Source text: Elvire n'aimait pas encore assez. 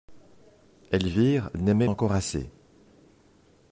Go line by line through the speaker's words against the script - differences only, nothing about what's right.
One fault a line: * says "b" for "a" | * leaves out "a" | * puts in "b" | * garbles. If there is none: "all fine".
* leaves out "pas"